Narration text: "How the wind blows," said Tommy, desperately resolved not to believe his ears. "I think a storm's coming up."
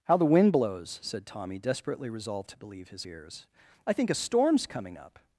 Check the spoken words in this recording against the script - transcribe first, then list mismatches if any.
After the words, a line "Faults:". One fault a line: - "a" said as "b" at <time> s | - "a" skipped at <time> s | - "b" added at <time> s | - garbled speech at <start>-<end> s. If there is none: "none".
"How the wind blows," said Tommy, desperately resolved to believe his ears. "I think a storm's coming up."
Faults:
- "not" skipped at 2.5 s